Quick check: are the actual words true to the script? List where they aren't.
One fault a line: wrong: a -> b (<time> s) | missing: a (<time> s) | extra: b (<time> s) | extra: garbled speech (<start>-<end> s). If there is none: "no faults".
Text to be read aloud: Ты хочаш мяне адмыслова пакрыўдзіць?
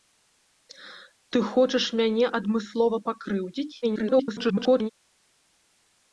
extra: garbled speech (3.8-4.9 s)